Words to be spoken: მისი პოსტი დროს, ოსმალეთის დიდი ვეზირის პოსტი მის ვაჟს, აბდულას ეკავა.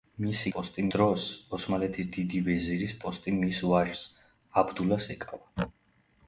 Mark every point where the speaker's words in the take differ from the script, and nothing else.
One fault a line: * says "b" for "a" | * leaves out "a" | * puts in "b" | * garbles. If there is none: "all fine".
all fine